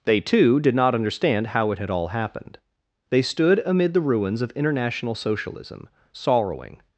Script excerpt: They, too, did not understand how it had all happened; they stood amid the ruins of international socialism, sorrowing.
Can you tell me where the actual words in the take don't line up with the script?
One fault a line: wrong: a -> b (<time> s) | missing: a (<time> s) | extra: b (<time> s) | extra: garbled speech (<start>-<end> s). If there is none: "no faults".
no faults